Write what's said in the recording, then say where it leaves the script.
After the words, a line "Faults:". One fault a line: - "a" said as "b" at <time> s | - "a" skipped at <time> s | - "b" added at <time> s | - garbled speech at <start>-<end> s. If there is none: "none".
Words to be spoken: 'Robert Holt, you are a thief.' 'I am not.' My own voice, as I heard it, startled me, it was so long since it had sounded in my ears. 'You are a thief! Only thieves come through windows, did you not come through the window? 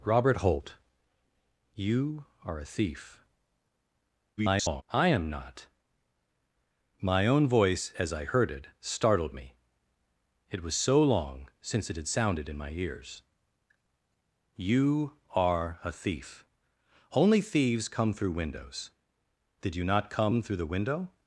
'Robert Holt, you are a thief.' [garbled] 'I am not.' My own voice, as I heard it, startled me, it was so long since it had sounded in my ears. 'You are a thief! Only thieves come through windows, did you not come through the window?
Faults:
- garbled speech at 4.4-4.8 s